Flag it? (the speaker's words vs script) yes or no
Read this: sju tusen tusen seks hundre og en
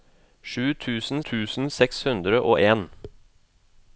no